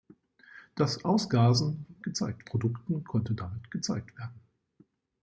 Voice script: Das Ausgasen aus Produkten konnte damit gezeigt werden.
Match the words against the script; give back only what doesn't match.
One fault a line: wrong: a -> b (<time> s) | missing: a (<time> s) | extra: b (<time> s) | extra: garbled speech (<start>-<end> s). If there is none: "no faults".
wrong: aus -> gezeigt (2.0 s)